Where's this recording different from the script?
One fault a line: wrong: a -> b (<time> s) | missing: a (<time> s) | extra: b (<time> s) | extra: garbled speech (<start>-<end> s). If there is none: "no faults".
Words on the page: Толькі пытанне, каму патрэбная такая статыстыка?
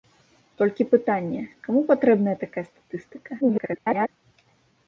extra: garbled speech (3.4-4.1 s)